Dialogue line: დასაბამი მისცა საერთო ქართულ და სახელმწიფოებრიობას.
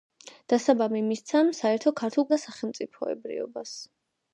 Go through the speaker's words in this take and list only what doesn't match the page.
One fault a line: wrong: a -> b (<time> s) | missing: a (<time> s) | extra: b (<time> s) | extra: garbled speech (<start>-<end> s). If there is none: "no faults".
no faults